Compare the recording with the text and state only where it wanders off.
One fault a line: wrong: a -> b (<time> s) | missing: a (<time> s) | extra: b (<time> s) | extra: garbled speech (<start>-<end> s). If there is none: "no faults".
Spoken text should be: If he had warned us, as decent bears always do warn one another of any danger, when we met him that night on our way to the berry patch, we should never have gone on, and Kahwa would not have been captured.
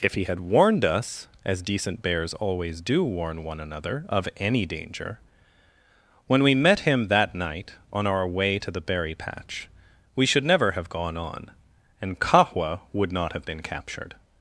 no faults